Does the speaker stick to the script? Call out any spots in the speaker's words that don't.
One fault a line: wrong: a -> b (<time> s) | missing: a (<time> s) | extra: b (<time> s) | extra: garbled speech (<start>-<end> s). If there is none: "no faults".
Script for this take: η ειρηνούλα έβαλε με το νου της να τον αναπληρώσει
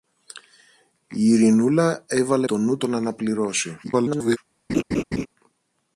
missing: με (2.5 s)
missing: της να (2.8 s)
extra: garbled speech (3.8-4.4 s)